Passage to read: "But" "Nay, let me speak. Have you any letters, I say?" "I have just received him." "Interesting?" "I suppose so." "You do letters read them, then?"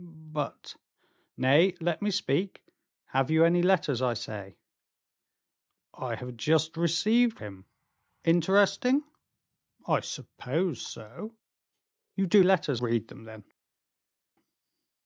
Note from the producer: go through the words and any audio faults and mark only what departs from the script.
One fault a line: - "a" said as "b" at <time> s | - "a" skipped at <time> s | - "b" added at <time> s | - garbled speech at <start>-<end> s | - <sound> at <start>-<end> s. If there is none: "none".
none